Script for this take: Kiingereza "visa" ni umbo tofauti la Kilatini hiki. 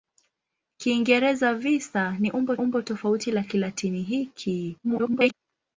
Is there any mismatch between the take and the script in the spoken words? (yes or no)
yes